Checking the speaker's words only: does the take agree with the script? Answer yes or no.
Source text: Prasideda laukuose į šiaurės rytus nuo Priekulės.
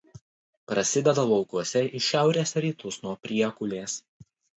yes